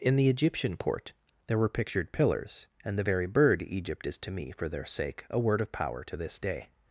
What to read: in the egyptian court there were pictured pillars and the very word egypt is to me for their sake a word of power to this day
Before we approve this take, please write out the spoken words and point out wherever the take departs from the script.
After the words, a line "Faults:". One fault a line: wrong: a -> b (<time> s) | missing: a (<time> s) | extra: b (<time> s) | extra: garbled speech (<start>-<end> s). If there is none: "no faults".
in the egyptian court there were pictured pillars and the very bird egypt is to me for their sake a word of power to this day
Faults:
wrong: word -> bird (3.3 s)